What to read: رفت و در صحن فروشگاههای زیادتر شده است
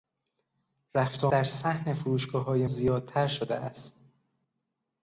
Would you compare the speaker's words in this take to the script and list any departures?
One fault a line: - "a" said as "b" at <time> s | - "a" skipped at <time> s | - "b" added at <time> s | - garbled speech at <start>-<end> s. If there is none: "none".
none